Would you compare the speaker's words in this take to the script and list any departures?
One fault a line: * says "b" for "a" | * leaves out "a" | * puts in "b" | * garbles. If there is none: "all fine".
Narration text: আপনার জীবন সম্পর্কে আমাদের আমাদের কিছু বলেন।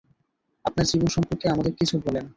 * leaves out "আমাদের"